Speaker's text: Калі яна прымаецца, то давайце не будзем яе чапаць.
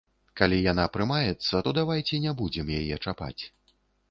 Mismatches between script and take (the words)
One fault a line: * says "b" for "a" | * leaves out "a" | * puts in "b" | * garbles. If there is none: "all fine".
all fine